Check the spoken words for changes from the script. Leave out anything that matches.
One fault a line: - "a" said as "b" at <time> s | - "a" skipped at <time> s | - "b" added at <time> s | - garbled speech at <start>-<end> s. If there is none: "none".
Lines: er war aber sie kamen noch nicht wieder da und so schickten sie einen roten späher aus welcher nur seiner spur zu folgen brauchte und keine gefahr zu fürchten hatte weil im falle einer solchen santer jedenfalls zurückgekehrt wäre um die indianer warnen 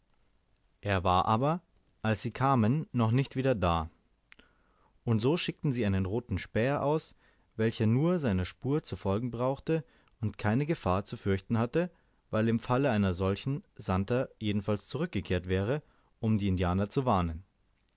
- "als" added at 2.0 s
- "zu" added at 16.9 s